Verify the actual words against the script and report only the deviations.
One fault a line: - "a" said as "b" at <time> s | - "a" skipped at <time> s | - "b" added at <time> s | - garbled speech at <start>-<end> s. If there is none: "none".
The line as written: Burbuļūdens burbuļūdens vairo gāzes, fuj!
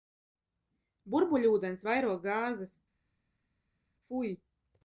- "burbuļūdens" skipped at 1.9 s